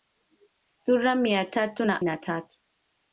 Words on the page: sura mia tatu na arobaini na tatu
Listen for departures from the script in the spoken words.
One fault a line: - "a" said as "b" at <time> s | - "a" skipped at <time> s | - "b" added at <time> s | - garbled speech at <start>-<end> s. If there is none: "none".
- "arobaini" skipped at 2.0 s